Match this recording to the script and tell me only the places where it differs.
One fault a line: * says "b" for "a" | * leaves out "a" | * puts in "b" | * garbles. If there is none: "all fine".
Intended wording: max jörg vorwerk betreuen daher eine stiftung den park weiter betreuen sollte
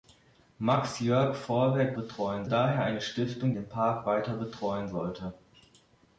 all fine